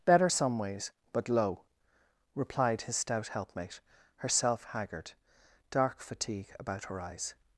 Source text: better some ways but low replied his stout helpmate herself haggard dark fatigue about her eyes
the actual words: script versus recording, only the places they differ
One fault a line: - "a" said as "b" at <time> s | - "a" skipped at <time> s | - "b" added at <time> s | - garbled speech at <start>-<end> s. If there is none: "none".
none